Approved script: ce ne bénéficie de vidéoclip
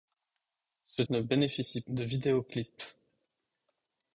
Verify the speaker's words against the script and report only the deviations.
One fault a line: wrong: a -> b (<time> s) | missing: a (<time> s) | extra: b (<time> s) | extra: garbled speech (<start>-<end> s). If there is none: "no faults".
no faults